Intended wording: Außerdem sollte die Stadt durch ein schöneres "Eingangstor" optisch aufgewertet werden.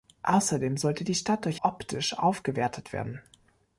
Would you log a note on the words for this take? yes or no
yes